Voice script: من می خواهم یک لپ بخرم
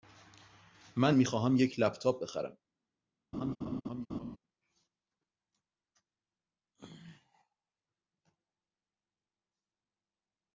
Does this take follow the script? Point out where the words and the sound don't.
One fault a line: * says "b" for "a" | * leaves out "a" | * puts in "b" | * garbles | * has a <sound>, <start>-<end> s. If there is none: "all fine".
* puts in "تاپ"
* has a laugh, 3.3-4.4 s